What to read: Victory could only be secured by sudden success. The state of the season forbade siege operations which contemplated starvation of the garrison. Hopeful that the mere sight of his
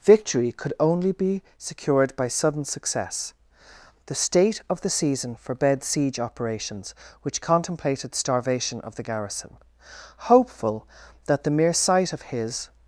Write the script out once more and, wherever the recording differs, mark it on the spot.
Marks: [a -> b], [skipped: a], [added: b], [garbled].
Victory could only be secured by sudden success. The state of the season forbade siege operations which contemplated starvation of the garrison. Hopeful that the mere sight of his